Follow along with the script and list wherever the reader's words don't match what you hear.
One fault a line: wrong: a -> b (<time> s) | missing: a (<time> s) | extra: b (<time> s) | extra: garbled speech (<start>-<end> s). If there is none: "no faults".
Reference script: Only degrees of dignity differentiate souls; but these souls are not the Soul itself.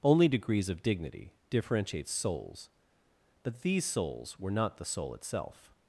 wrong: are -> were (4.4 s)